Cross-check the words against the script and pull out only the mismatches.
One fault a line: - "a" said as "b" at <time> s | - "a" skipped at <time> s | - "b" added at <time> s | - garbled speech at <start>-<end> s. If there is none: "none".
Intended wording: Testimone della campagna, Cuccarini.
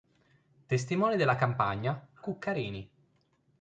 none